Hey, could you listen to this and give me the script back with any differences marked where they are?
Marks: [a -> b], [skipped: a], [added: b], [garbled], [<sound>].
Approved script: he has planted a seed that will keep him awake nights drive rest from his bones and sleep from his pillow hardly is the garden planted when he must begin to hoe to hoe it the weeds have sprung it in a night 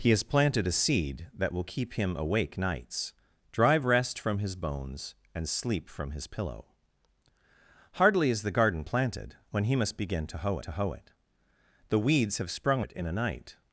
he has planted a seed that will keep him awake nights drive rest from his bones and sleep from his pillow hardly is the garden planted when he must begin to hoe to hoe it the weeds have sprung it in a night